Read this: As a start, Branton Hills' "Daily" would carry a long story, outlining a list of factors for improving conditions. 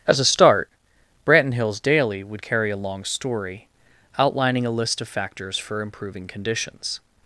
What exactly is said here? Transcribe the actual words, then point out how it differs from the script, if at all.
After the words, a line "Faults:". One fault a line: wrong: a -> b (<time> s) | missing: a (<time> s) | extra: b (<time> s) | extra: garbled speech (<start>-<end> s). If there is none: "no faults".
As a start, Branton Hills' "Daily" would carry a long story, outlining a list of factors for improving conditions.
Faults:
no faults